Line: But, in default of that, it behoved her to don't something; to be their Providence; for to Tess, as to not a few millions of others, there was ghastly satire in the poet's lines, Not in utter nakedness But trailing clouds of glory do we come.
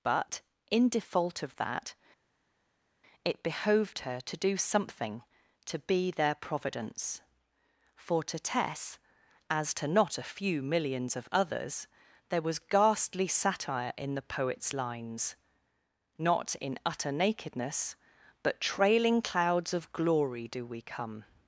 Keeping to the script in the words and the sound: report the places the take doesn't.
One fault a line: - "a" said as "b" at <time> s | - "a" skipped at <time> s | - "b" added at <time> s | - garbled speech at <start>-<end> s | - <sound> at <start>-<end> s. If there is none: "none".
- "don't" said as "do" at 4.4 s